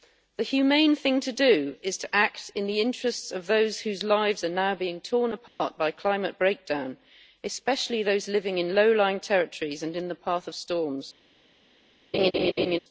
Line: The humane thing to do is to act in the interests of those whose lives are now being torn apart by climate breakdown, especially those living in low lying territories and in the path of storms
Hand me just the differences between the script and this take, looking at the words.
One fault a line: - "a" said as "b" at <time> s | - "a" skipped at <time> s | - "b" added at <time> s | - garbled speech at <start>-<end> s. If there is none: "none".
none